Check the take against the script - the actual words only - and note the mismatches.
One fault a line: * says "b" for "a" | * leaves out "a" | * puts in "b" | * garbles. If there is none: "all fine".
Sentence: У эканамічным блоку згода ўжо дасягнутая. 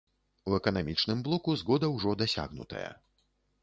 all fine